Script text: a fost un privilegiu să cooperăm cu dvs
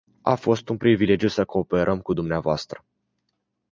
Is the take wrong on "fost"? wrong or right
right